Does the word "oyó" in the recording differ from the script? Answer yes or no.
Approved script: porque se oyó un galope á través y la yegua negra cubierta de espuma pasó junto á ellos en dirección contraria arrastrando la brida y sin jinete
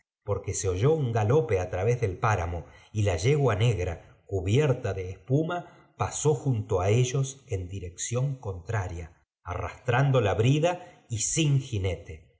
no